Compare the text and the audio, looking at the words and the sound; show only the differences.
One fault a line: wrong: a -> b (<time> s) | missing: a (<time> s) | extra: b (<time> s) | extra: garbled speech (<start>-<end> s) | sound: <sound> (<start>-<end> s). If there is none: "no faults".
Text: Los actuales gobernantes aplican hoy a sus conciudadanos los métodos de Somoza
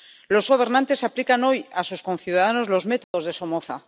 missing: actuales (0.5 s)
sound: dropout (3.0-3.1 s)